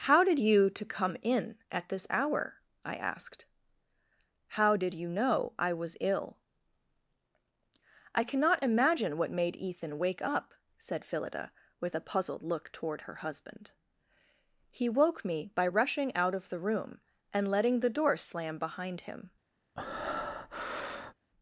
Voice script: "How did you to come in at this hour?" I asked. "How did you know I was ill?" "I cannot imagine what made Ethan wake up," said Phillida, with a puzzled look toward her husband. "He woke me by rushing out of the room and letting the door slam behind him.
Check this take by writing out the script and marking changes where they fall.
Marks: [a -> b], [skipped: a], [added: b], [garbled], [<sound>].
"How did you to come in at this hour?" I asked. "How did you know I was ill?" "I cannot imagine what made Ethan wake up," said Phillida, with a puzzled look toward her husband. "He woke me by rushing out of the room and letting the door slam behind him. [breath]